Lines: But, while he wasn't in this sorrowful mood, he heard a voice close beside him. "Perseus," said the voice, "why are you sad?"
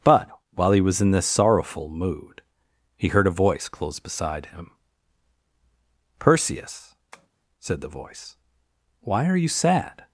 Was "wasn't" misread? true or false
true